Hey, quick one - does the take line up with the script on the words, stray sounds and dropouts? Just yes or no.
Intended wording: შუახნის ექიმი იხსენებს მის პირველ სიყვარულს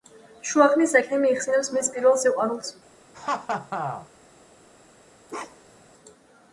no